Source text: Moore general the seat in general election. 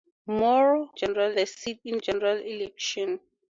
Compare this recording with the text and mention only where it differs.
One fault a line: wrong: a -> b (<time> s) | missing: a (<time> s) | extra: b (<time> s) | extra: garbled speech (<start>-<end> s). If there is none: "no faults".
no faults